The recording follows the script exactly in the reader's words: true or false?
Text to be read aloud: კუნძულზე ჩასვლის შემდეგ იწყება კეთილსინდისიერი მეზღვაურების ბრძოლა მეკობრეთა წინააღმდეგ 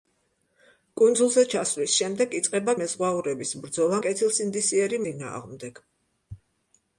false